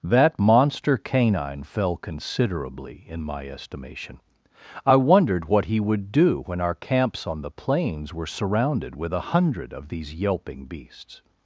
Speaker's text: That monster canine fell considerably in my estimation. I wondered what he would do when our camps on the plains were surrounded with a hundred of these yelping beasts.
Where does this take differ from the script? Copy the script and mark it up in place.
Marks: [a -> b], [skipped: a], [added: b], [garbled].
That monster canine fell considerably in my estimation. I wondered what he would do when our camps on the plains were surrounded with a hundred of these yelping beasts.